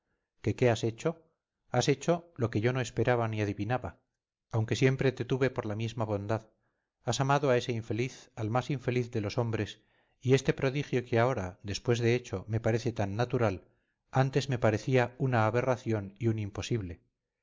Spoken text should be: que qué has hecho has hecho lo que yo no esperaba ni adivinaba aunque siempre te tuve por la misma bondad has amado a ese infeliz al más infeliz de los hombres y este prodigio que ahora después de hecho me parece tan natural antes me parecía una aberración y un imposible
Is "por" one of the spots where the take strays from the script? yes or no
no